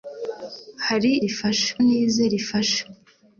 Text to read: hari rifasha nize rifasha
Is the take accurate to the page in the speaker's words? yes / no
yes